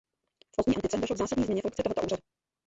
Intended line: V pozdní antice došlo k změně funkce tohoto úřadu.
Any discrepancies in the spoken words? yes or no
yes